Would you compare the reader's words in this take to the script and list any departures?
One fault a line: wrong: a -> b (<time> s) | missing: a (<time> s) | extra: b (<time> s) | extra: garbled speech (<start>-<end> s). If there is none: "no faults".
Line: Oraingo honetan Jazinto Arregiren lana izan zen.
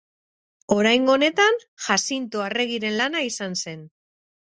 no faults